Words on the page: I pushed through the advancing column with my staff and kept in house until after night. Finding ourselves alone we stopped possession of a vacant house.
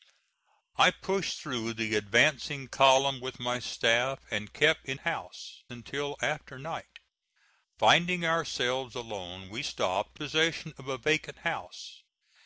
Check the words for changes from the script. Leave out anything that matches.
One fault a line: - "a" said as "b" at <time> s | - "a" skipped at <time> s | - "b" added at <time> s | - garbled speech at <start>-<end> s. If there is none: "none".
none